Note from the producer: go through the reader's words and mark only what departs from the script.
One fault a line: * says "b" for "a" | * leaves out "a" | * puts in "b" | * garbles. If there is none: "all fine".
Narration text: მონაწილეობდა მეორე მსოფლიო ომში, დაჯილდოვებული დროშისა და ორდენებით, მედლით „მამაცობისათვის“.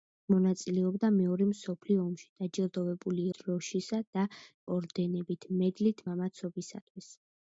all fine